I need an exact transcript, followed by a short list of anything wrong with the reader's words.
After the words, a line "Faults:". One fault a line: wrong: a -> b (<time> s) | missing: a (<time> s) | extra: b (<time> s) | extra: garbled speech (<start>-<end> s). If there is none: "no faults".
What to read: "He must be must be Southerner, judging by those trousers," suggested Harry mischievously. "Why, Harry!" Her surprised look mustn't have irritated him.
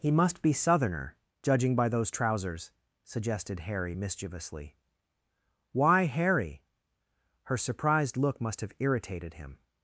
"He must be Southerner, judging by those trousers," suggested Harry mischievously. "Why, Harry!" Her surprised look must have irritated him.
Faults:
missing: must be (0.5 s)
wrong: mustn't -> must (8.4 s)